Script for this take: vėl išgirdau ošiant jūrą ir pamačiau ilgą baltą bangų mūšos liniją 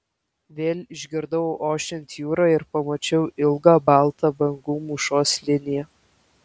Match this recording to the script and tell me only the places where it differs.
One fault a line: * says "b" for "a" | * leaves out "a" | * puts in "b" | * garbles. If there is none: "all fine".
all fine